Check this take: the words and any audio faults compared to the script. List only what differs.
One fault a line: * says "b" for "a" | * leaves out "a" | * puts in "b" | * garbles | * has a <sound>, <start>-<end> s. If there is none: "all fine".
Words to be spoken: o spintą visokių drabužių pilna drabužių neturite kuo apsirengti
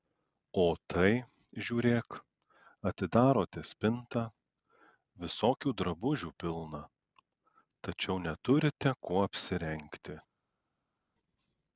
* puts in "tai žiūrėk atidarote"
* says "tačiau" for "drabužių"